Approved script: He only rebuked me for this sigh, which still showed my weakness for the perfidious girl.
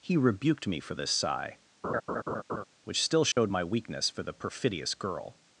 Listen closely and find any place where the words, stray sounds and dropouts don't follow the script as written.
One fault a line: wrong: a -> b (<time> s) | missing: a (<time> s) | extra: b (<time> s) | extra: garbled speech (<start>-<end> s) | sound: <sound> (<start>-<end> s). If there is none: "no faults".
missing: only (0.2 s)
sound: laugh (1.8-2.6 s)
sound: dropout (3.3-3.4 s)